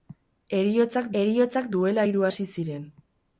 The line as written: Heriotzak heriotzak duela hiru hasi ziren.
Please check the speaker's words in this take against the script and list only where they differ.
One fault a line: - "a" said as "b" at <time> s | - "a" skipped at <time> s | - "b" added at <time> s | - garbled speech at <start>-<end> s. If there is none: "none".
none